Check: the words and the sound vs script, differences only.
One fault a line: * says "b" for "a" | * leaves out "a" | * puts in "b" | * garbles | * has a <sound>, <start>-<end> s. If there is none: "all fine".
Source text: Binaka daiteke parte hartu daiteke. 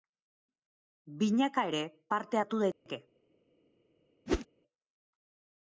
* says "ere" for "daiteke"
* has a dropout, 2.7-2.9 s
* has a whoosh, 4.3-4.5 s